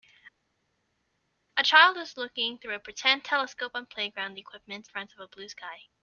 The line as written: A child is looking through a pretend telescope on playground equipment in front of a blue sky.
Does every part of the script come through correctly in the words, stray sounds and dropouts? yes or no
no